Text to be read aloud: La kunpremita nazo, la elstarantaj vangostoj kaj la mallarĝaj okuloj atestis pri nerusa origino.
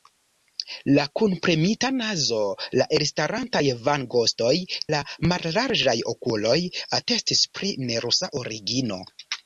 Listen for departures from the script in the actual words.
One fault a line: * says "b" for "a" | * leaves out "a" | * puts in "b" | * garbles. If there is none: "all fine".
* leaves out "kaj"